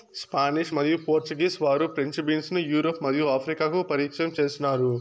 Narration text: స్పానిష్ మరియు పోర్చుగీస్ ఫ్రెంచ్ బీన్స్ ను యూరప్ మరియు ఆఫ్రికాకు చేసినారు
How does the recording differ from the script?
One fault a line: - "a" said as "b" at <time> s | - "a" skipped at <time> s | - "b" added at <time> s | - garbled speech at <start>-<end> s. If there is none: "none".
- "వారు" added at 1.6 s
- "పరిచయం" added at 3.8 s